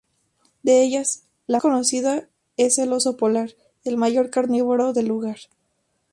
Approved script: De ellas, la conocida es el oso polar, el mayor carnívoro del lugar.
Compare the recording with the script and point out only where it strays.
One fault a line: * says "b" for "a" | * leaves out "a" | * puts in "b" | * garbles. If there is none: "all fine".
all fine